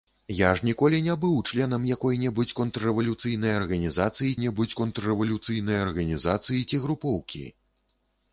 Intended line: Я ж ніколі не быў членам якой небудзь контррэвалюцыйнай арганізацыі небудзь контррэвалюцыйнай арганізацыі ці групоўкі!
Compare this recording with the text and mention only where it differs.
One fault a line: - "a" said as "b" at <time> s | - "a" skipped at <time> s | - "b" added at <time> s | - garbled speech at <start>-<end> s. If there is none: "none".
none